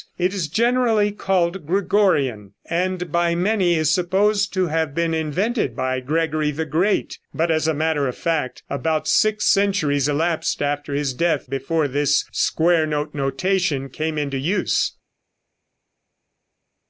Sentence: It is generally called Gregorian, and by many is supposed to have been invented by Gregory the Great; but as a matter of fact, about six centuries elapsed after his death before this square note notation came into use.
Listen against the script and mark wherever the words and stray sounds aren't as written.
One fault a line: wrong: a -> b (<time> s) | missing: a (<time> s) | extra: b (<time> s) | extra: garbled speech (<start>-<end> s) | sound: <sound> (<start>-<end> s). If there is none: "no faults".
no faults